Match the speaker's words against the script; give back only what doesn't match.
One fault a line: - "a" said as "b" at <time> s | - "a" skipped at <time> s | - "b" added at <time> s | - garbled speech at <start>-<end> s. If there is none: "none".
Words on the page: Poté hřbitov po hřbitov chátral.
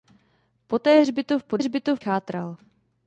none